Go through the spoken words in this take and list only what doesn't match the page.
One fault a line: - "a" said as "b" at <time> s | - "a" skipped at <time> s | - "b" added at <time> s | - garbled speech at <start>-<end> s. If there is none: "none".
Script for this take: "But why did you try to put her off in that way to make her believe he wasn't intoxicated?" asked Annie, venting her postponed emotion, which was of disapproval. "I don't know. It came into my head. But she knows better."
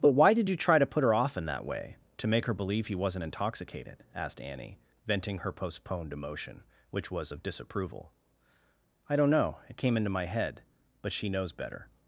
none